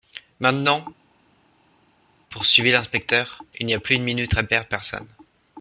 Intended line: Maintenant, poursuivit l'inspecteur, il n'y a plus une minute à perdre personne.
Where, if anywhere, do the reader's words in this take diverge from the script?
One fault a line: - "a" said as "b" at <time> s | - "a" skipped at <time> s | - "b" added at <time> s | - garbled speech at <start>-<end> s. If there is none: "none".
none